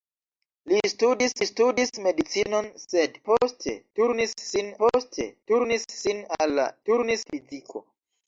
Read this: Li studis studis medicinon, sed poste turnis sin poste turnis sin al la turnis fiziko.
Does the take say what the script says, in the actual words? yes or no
yes